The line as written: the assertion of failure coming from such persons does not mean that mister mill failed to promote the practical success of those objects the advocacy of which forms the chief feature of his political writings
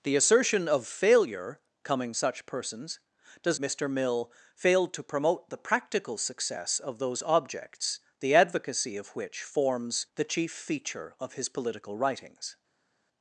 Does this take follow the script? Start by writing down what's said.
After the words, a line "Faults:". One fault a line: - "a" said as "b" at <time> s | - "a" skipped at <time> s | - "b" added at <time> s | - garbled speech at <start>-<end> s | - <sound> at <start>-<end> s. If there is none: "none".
the assertion of failure coming such persons does mister mill failed to promote the practical success of those objects the advocacy of which forms the chief feature of his political writings
Faults:
- "from" skipped at 2.1 s
- "not mean that" skipped at 3.6 s